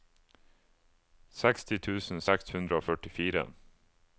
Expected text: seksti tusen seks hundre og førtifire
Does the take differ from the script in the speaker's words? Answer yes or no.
no